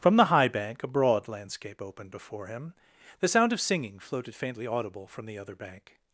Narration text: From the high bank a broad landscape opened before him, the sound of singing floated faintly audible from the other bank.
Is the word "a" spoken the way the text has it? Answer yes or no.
yes